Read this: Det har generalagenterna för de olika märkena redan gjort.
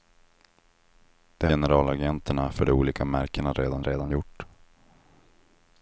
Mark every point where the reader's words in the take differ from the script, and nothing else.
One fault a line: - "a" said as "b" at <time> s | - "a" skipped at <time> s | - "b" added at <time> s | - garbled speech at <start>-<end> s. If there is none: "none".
- "har" skipped at 1.5 s
- "redan" added at 3.8 s